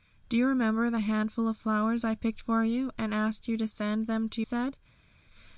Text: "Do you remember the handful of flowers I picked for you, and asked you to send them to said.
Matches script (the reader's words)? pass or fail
pass